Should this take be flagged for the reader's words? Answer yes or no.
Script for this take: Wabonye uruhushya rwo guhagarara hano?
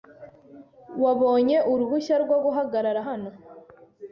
no